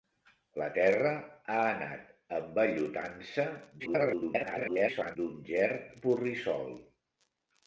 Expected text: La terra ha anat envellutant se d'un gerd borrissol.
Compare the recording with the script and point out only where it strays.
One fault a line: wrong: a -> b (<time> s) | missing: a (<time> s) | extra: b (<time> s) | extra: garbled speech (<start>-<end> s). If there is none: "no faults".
extra: garbled speech (3.8-5.2 s)